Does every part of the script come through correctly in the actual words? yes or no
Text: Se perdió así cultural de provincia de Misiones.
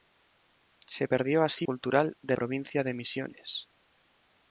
yes